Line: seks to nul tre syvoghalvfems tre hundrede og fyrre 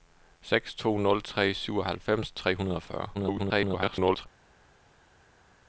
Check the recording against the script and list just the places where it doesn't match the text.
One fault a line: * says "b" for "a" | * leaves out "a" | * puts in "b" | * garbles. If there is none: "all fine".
* garbles